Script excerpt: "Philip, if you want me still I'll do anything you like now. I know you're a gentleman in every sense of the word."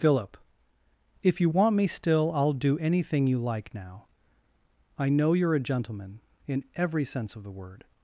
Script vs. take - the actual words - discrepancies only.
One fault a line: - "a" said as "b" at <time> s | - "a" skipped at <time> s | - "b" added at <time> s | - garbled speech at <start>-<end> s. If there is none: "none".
none